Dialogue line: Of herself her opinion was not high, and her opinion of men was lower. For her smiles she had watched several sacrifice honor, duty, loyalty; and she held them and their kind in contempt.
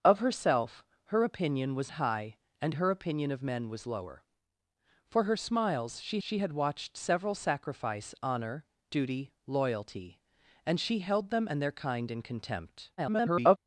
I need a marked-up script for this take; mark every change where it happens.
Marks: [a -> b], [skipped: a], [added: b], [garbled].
Of herself her opinion was [skipped: not] high, and her opinion of men was lower. For her smiles she [added: she] had watched several sacrifice honor, duty, loyalty; and she held them and their kind in contempt. [garbled]